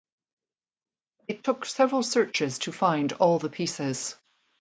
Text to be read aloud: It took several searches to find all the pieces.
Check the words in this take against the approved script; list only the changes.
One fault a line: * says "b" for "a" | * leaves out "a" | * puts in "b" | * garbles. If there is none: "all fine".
all fine